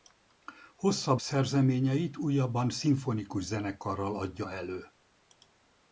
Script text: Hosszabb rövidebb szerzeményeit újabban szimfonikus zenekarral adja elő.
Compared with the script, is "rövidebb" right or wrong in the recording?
wrong